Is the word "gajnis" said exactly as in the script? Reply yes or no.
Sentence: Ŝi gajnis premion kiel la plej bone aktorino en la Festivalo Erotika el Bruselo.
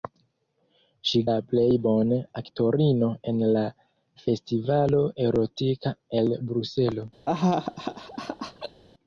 no